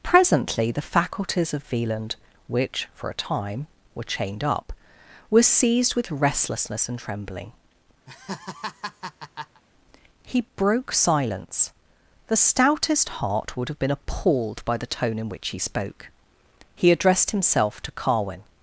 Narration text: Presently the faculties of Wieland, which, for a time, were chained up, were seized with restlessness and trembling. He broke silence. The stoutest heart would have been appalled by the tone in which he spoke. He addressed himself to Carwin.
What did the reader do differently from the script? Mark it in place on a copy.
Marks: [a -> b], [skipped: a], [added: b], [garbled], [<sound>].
Presently the faculties of Wieland, which, for a time, were chained up, were seized with restlessness and trembling. [laugh] He broke silence. The stoutest heart would have been appalled by the tone in which he spoke. He addressed himself to Carwin.